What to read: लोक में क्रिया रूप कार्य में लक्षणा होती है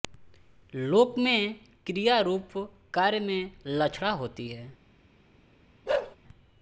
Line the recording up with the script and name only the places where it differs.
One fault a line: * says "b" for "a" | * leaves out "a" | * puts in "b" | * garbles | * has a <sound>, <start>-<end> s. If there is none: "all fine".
* has a bark, 5.9-6.2 s